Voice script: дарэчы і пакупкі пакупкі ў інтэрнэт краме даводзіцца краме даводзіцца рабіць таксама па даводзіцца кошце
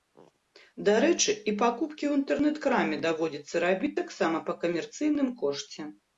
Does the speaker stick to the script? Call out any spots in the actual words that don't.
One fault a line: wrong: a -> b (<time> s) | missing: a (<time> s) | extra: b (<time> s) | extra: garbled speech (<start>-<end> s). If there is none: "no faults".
missing: пакупкі (2.0 s)
missing: краме даводзіцца (3.5 s)
wrong: даводзіцца -> камерцыйным (4.6 s)